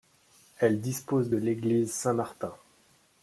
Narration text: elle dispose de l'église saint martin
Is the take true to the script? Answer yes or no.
yes